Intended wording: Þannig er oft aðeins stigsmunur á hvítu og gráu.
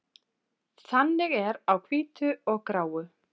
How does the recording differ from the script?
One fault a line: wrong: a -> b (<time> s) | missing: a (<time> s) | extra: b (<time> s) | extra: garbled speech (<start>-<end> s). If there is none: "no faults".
missing: oft aðeins stigsmunur (1.6 s)